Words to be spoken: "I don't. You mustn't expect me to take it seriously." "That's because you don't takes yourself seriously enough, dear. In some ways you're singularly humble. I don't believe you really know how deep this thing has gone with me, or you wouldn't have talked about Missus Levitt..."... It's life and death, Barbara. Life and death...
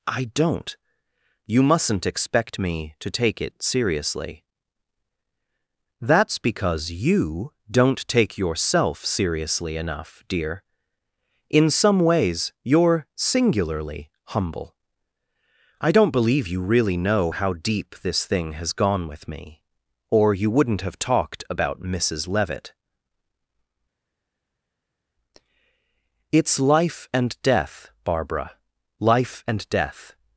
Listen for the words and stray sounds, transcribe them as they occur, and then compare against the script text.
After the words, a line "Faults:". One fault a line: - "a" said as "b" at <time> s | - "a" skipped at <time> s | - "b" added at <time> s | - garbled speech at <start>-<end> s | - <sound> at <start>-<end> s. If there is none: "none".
"I don't. You mustn't expect me to take it seriously." "That's because you don't take yourself seriously enough, dear. In some ways you're singularly humble. I don't believe you really know how deep this thing has gone with me, or you wouldn't have talked about Missus Levitt..."... It's life and death, Barbara. Life and death...
Faults:
- "takes" said as "take" at 8.1 s